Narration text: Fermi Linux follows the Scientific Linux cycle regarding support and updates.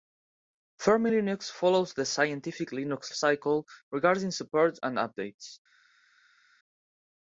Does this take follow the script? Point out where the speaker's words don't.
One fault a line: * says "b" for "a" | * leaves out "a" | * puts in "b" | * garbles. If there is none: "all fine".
all fine